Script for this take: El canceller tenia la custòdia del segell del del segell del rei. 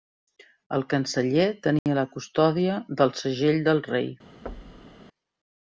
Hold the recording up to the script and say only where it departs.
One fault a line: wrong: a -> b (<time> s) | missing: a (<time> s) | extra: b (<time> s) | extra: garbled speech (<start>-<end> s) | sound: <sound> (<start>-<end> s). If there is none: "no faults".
sound: dropout (1.8-1.9 s)
missing: del segell del (3.8 s)
sound: thud (4.5-5.0 s)